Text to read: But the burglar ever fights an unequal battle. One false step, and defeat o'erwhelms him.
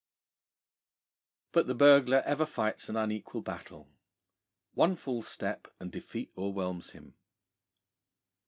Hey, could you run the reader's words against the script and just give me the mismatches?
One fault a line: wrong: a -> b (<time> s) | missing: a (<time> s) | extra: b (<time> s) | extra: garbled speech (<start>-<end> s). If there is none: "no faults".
no faults